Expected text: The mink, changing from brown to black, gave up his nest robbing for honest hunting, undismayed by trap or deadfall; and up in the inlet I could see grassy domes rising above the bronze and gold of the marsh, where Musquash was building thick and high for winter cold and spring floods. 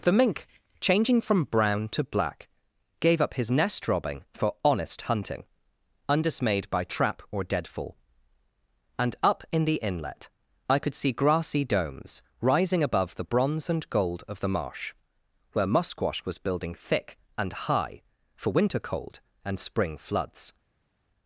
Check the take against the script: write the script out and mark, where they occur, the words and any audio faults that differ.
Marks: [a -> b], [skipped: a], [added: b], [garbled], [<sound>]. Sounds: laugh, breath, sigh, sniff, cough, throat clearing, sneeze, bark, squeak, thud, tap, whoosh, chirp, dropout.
The mink, changing from brown to black, gave up his nest robbing for honest hunting, undismayed by trap or deadfall; and up in the inlet I could see grassy domes rising above the bronze and gold of the marsh, where Musquash was building thick and high for winter cold and spring floods.